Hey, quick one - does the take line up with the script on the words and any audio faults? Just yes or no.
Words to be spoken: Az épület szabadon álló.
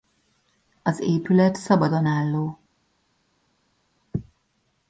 yes